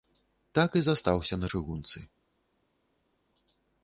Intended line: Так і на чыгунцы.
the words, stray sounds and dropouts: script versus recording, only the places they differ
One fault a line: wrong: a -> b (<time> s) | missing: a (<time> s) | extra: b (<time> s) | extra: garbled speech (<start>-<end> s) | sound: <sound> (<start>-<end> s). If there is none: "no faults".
extra: застаўся (0.9 s)